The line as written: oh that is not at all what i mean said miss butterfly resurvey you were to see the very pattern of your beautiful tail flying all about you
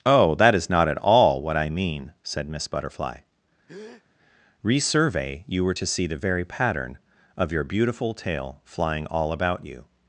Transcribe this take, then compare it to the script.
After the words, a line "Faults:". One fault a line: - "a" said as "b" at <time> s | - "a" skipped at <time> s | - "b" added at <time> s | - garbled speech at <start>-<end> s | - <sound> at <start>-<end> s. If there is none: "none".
oh that is not at all what i mean said miss butterfly resurvey you were to see the very pattern of your beautiful tail flying all about you
Faults:
- breath at 3.7-4.0 s